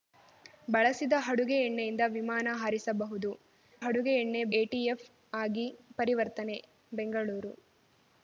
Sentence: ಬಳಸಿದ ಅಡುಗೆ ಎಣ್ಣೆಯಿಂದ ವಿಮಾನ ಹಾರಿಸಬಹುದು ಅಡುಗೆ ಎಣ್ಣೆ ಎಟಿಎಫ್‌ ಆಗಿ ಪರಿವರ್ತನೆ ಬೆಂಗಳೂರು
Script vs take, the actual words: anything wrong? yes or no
no